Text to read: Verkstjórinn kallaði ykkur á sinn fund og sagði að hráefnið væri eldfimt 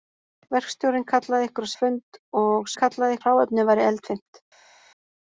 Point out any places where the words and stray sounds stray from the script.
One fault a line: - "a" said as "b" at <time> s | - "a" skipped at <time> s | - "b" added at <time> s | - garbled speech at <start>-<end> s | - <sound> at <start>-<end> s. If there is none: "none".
- "sinn" skipped at 1.7 s
- "sagði" said as "kallaði" at 2.8 s